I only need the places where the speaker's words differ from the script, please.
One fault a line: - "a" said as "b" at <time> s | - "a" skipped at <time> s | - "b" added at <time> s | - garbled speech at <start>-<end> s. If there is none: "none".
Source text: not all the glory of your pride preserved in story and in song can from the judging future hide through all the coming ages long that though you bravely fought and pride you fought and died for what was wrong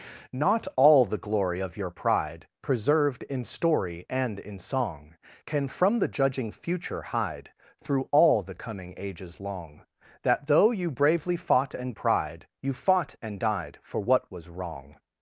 none